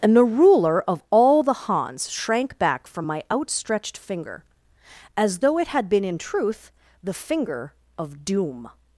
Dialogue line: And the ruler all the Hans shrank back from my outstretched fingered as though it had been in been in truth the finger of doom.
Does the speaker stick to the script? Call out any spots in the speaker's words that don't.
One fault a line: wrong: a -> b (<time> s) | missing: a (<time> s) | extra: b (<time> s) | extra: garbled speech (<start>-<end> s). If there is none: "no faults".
extra: of (0.9 s)
wrong: fingered -> finger (4.0 s)
missing: been in (6.2 s)